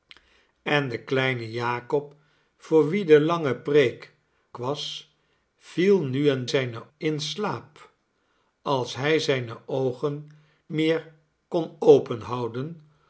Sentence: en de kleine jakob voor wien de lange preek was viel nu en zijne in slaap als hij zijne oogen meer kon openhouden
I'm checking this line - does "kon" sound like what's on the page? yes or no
yes